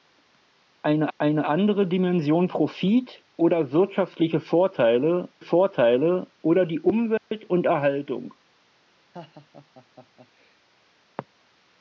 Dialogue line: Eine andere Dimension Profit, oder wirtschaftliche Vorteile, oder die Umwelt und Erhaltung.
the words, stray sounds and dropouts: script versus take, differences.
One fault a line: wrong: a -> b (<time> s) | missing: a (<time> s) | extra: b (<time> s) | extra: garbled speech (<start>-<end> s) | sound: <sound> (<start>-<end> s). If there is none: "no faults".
extra: eine (1.2 s)
extra: Vorteile (5.4 s)
sound: dropout (7.2-7.3 s)
sound: laugh (9.1-10.6 s)